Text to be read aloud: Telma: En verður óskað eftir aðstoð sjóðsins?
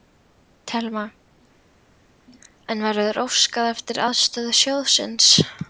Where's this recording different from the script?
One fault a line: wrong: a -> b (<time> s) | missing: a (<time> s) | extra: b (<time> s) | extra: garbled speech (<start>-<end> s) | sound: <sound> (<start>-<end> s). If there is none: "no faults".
no faults